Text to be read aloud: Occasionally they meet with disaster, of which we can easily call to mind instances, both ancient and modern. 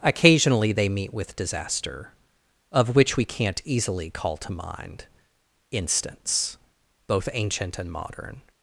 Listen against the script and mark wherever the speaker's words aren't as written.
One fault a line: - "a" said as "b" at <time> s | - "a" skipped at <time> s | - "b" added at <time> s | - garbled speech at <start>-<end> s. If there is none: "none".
- "can" said as "can't" at 3.2 s
- "instances" said as "instance" at 5.7 s